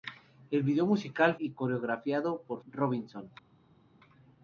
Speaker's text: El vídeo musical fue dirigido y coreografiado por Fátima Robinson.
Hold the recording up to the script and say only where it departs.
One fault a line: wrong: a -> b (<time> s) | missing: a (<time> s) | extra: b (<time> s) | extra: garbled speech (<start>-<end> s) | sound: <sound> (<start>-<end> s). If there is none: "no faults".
missing: fue dirigido (1.4 s)
missing: Fátima (2.6 s)